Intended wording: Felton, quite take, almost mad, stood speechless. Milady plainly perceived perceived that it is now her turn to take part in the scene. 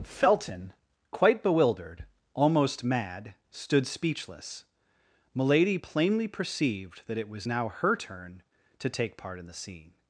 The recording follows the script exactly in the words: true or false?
false